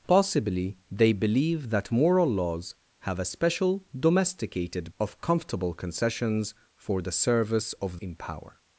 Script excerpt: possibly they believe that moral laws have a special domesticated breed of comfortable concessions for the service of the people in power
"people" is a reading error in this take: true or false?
true